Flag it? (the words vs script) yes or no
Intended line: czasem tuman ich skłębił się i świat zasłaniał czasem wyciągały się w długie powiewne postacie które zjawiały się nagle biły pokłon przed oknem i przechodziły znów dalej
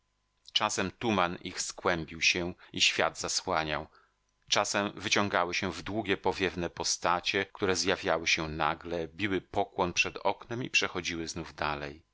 no